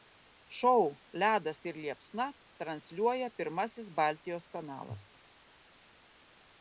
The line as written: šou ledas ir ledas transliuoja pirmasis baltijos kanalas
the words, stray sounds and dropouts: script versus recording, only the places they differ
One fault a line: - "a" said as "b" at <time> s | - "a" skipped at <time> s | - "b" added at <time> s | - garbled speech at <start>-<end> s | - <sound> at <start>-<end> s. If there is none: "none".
- "ledas" said as "liepsna" at 1.8 s